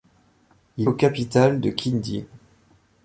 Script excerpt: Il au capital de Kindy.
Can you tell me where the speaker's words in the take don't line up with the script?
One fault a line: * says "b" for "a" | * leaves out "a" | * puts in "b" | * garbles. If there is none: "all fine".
all fine